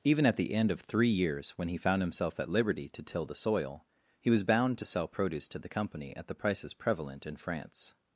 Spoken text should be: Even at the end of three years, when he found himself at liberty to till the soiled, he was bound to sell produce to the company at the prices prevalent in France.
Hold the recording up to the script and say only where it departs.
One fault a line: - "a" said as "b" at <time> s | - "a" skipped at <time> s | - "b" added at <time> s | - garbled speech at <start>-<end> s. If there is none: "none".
- "soiled" said as "soil" at 3.4 s